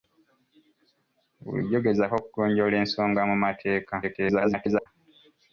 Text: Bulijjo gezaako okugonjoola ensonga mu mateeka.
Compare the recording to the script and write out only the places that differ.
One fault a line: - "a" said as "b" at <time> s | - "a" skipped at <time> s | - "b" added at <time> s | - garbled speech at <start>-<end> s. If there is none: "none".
- garbled speech at 4.0-4.9 s